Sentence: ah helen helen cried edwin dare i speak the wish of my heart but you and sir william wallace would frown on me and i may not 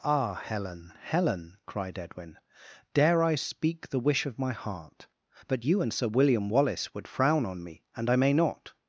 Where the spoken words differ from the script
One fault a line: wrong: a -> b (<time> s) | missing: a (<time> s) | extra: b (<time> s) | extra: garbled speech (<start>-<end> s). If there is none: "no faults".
no faults